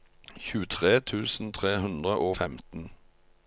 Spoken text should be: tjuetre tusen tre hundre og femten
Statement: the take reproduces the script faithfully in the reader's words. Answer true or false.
true